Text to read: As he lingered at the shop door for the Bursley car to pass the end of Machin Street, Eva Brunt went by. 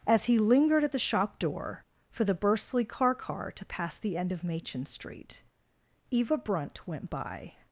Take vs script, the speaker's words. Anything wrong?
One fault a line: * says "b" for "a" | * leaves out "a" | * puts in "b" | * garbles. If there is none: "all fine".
* puts in "car"